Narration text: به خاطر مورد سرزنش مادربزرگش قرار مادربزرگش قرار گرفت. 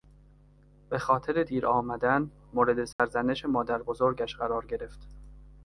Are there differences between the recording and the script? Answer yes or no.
yes